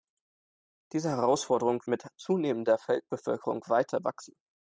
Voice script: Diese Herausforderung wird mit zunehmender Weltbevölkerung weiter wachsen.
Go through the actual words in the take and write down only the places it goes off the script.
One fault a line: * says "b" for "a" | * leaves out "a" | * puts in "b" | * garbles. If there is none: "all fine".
* leaves out "wird"